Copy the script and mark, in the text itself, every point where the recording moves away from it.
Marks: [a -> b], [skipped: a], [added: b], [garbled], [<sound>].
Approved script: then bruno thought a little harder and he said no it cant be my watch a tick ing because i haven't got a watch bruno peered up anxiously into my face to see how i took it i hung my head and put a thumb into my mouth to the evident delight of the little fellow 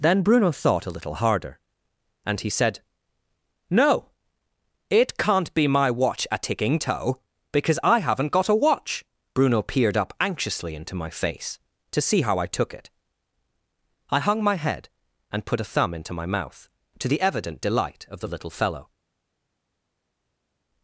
then bruno thought a little harder and he said no it cant be my watch a [tick ing -> ticking toe] because i haven't got a watch bruno peered up anxiously into my face to see how i took it i hung my head and put a thumb into my mouth to the evident delight of the little fellow